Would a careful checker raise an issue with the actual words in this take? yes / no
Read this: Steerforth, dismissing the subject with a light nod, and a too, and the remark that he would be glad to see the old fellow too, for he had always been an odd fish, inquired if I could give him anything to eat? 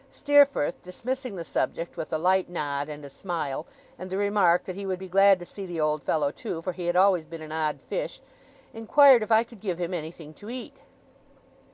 yes